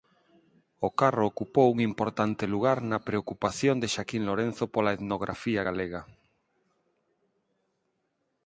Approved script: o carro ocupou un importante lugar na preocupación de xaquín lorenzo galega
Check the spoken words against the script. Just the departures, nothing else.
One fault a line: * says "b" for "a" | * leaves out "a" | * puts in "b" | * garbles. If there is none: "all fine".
* puts in "pola etnografía"